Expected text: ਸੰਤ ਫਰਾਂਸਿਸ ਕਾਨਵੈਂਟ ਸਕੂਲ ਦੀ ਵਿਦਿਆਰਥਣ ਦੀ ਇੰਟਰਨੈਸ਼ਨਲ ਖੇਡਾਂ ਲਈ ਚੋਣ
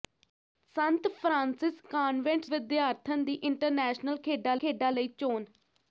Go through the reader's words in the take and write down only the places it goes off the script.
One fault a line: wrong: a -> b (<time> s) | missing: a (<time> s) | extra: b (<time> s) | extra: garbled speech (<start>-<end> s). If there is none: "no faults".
missing: ਸਕੂਲ ਦੀ (2.5 s)
extra: ਖੇਡਾਂ (4.6 s)